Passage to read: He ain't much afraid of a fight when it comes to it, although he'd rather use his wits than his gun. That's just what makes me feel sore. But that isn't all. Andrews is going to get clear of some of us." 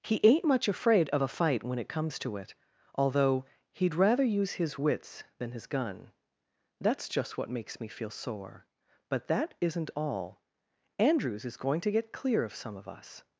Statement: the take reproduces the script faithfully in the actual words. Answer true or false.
true